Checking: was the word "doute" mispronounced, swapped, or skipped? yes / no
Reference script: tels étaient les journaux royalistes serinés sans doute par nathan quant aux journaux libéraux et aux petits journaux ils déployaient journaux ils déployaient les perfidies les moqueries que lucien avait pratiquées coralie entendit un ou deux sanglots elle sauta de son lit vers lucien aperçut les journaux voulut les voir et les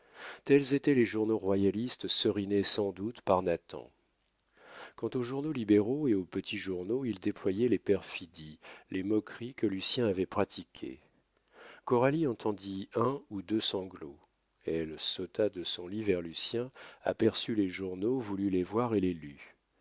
no